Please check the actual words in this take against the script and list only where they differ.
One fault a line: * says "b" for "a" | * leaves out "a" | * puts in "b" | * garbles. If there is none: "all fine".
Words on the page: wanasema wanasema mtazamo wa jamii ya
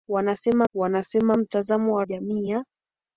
all fine